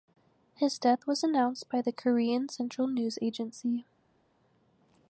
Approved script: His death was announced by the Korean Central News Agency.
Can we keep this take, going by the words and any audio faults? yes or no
yes